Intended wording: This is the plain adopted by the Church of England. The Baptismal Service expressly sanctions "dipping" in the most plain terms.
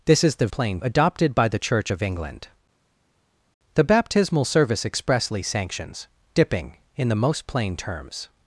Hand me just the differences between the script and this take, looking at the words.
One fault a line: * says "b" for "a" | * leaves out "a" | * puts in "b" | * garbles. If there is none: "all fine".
all fine